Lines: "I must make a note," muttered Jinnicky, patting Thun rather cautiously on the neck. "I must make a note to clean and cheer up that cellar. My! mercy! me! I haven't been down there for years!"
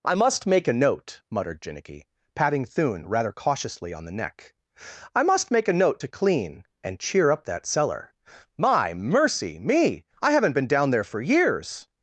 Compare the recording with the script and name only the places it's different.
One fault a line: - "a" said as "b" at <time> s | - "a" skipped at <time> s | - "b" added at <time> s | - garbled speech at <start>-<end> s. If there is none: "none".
none